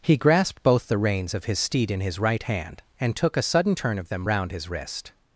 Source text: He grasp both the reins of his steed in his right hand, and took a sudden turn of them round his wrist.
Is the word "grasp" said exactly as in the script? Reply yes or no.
no